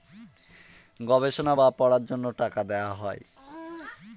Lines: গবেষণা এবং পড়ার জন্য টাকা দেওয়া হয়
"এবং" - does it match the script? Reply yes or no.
no